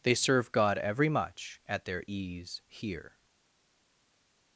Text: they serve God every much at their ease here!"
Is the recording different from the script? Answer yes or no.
no